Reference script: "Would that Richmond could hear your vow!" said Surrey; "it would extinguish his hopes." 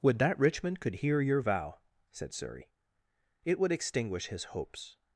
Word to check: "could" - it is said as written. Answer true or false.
true